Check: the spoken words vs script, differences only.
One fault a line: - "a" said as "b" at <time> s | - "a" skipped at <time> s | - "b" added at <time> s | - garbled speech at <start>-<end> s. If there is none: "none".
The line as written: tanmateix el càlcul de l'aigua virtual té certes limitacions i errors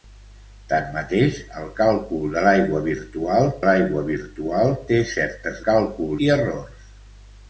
- "l'aigua virtual" added at 3.7 s
- "limitacions" said as "càlcul" at 5.7 s